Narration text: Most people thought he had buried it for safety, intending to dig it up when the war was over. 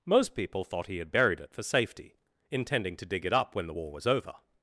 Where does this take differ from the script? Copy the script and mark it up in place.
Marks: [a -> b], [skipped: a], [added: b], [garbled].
Most people thought he had buried it for safety, intending to dig it up when the war was over.